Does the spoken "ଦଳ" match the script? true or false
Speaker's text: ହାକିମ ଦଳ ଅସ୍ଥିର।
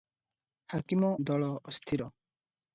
true